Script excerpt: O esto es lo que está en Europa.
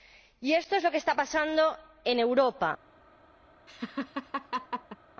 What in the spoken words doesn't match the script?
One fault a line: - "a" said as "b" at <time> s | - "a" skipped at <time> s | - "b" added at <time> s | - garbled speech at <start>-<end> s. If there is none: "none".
- "O" said as "Y" at 0.4 s
- "pasando" added at 1.1 s